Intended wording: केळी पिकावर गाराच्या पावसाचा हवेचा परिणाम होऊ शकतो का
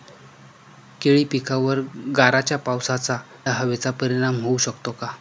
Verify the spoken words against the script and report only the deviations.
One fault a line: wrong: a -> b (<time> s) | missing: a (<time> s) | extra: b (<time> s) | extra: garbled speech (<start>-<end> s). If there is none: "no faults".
no faults